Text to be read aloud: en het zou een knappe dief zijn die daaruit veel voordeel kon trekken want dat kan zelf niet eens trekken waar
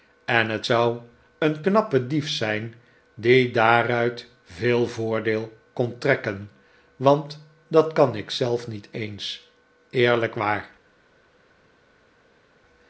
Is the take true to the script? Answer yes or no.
no